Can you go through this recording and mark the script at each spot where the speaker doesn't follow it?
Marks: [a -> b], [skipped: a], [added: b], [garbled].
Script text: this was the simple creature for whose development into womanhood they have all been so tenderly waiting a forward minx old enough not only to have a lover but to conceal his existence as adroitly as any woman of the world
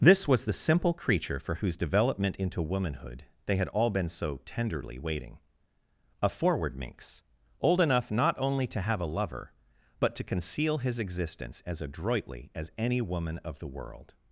this was the simple creature for whose development into womanhood they [have -> had] all been so tenderly waiting a forward minx old enough not only to have a lover but to conceal his existence as adroitly as any woman of the world